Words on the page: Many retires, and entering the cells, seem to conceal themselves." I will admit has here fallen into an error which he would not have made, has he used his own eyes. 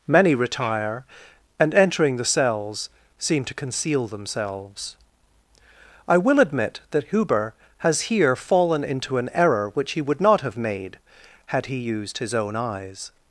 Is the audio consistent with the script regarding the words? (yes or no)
no